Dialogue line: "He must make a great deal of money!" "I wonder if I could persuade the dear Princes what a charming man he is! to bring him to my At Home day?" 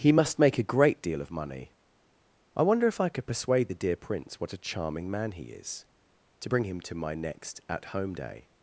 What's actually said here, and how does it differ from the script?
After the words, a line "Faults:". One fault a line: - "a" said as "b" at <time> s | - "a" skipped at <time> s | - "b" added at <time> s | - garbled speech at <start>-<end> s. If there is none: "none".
"He must make a great deal of money!" "I wonder if I could persuade the dear Prince what a charming man he is! to bring him to my next At Home day?"
Faults:
- "Princes" said as "Prince" at 4.0 s
- "next" added at 7.1 s